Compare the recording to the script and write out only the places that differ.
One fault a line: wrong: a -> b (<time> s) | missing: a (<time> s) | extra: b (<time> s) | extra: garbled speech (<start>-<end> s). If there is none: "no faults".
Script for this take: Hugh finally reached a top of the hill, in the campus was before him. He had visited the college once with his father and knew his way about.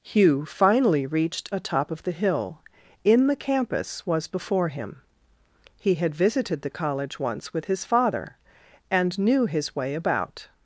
no faults